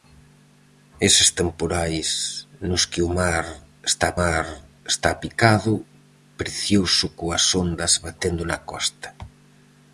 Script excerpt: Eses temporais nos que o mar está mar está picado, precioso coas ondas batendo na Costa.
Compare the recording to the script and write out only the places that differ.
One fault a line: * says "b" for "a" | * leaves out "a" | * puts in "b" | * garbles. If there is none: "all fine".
all fine